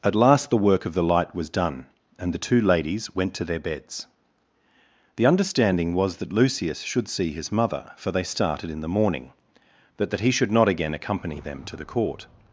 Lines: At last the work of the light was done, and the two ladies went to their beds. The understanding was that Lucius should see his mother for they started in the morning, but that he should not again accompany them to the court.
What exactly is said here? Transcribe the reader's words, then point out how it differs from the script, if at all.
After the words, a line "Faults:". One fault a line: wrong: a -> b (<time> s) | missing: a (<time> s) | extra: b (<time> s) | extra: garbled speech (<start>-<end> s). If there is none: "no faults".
At last the work of the light was done, and the two ladies went to their beds. The understanding was that Lucius should see his mother for they started in the morning, but that he should not again accompany them to the court.
Faults:
no faults